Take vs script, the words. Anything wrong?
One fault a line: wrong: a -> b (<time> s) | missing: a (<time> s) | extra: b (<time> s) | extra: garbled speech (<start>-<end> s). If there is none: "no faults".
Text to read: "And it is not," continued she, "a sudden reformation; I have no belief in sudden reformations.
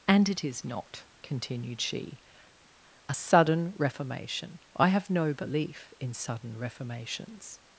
no faults